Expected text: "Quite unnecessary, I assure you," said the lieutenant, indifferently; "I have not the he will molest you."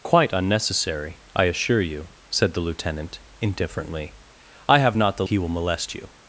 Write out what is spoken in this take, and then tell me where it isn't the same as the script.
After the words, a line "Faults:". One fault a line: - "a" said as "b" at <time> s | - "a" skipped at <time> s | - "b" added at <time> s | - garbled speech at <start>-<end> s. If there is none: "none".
"Quite unnecessary, I assure you," said the lieutenant, indifferently; "I have not the he will molest you."
Faults:
none